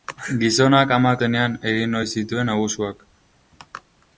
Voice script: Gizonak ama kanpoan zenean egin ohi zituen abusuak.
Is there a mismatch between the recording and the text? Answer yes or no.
yes